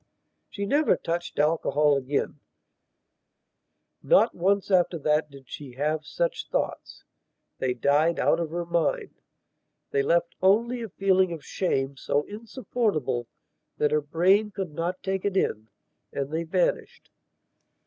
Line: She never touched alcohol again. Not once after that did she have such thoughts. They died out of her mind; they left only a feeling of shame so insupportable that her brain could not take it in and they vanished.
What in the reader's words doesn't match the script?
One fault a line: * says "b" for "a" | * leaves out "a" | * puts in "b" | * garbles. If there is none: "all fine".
all fine